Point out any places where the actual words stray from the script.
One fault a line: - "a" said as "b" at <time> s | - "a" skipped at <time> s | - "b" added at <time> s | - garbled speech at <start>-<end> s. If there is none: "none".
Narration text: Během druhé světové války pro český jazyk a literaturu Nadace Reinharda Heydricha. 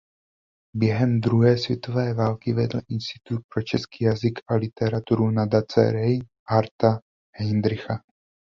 - "vedl Institut" added at 2.5 s